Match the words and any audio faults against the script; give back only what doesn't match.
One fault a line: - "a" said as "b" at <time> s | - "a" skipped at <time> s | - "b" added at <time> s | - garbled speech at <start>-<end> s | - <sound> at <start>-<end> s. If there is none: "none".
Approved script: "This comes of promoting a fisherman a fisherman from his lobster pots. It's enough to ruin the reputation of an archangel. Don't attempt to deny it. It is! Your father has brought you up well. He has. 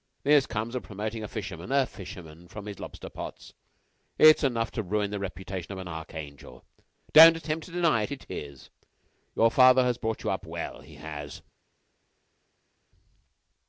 none